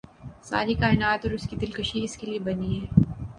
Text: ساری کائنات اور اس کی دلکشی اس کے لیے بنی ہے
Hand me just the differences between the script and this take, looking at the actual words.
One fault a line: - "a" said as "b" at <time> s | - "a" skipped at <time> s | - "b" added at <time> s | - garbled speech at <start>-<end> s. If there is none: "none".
none